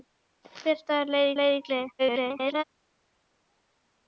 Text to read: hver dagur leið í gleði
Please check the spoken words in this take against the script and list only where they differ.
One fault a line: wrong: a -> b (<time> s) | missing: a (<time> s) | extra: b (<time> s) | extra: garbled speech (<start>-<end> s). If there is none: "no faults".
extra: leið (1.4 s)
extra: garbled speech (2.0-2.6 s)